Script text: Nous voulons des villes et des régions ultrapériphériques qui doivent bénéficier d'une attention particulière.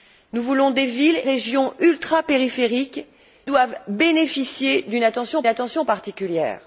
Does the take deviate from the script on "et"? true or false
true